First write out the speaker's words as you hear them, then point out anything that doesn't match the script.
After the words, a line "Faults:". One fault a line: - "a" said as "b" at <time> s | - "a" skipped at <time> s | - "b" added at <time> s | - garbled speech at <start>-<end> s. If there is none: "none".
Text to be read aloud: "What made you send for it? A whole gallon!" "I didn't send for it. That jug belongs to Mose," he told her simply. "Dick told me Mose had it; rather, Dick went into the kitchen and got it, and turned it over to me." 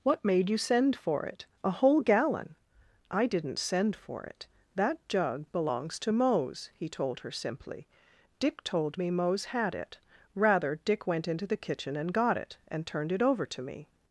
"What made you send for it? A whole gallon!" "I didn't send for it. That jug belongs to Mose," he told her simply. "Dick told me Mose had it; rather, Dick went into the kitchen and got it, and turned it over to me."
Faults:
none